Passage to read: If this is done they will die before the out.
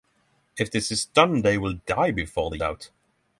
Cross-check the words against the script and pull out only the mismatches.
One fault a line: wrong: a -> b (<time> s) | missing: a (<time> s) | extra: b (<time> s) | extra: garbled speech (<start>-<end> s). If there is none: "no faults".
no faults